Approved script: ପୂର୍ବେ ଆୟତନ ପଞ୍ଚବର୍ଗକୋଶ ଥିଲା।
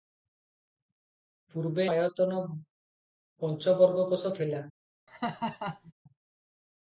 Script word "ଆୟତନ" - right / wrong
right